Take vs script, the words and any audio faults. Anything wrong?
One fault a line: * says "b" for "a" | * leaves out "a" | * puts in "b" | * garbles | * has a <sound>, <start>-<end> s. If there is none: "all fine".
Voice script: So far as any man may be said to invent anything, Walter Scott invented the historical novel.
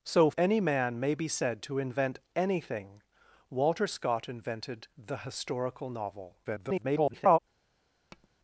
* leaves out "far as"
* garbles
* has a tap, 8.1-8.3 s